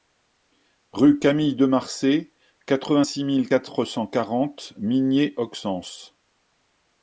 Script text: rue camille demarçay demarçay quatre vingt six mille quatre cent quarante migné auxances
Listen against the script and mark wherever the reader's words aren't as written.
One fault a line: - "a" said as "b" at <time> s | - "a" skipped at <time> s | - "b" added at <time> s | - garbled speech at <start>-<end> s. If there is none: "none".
- "demarçay" skipped at 2.3 s